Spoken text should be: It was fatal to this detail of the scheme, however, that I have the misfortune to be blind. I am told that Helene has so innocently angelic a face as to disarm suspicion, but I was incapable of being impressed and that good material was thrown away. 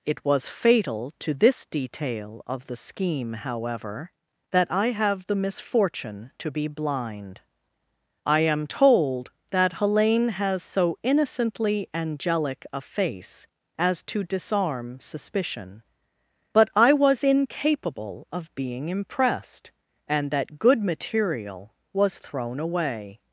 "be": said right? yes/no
yes